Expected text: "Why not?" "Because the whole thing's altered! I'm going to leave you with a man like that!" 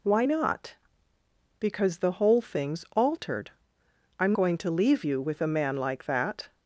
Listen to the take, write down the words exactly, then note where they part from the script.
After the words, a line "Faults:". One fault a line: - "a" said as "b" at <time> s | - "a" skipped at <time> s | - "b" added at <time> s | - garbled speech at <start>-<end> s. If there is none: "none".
"Why not?" "Because the whole thing's altered! I'm going to leave you with a man like that!"
Faults:
none